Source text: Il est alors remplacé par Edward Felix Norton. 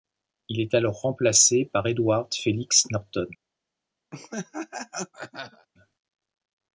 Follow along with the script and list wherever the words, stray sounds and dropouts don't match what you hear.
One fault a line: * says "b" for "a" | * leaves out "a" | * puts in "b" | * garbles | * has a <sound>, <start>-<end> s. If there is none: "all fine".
* has a laugh, 4.1-5.7 s